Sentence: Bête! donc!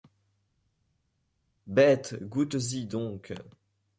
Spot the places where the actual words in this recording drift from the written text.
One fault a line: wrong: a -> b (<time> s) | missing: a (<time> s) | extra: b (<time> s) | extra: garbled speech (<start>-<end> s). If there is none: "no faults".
extra: goûtes y (2.2 s)